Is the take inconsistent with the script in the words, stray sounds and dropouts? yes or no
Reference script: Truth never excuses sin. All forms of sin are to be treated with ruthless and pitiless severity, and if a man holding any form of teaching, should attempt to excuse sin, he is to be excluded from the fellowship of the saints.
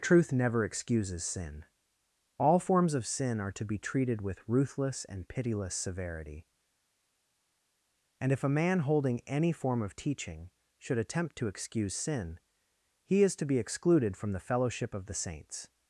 no